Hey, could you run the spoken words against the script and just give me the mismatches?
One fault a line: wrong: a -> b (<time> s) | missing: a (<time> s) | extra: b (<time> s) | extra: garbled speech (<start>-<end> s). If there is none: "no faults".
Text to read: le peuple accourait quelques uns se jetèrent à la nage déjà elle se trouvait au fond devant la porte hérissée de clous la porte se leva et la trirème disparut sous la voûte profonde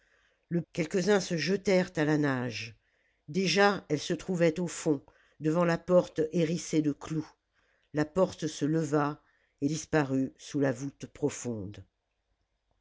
missing: peuple accourait (0.6 s)
missing: la trirème (9.7 s)